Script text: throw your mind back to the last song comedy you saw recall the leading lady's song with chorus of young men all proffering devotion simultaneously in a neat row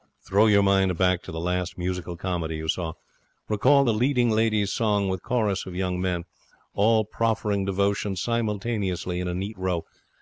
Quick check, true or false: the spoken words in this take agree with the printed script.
false